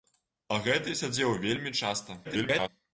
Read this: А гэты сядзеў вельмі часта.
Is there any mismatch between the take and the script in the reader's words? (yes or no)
yes